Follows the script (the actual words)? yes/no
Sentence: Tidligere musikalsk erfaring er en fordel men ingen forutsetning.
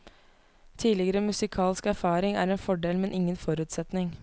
yes